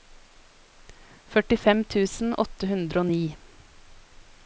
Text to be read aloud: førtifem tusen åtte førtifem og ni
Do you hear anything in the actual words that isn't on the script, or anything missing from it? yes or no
yes